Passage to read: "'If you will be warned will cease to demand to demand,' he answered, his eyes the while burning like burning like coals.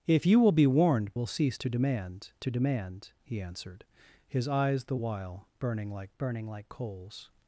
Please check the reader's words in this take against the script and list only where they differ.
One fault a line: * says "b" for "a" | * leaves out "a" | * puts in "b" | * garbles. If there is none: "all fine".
all fine